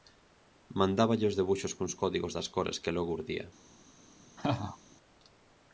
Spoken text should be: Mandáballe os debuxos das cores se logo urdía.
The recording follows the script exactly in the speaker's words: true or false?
false